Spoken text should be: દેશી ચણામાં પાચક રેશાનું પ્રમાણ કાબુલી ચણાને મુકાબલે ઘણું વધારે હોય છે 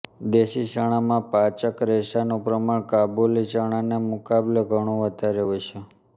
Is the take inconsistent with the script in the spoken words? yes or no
no